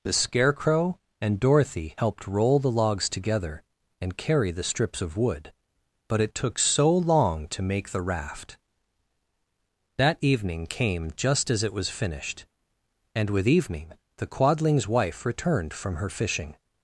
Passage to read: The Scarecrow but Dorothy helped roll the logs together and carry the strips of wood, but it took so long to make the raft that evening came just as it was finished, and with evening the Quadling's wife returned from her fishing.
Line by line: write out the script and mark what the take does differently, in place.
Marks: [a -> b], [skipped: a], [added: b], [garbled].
The Scarecrow [but -> and] Dorothy helped roll the logs together and carry the strips of wood, but it took so long to make the raft that evening came just as it was finished, and with evening the Quadling's wife returned from her fishing.